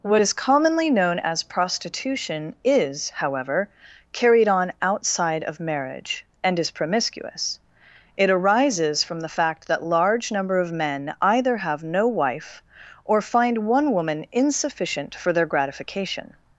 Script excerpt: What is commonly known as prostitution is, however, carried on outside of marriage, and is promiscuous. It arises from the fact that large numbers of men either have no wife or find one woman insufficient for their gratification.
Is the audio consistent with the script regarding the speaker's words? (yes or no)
no